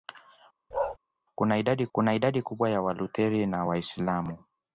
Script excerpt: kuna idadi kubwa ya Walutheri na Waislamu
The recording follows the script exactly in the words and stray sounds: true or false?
false